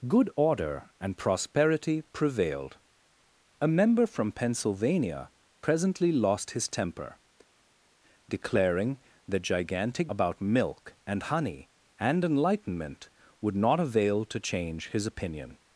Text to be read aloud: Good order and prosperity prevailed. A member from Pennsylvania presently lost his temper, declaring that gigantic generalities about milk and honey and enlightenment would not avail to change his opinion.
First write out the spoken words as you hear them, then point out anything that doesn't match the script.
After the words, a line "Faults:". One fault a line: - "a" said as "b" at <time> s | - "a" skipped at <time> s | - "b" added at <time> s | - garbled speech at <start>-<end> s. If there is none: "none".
Good order and prosperity prevailed. A member from Pennsylvania presently lost his temper, declaring that gigantic about milk and honey and enlightenment would not avail to change his opinion.
Faults:
- "generalities" skipped at 10.1 s